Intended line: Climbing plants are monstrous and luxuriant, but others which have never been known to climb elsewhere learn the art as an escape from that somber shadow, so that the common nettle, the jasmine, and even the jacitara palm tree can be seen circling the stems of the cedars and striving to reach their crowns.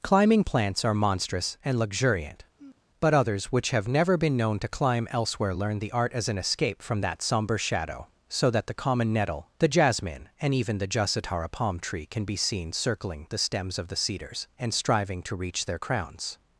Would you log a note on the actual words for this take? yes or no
no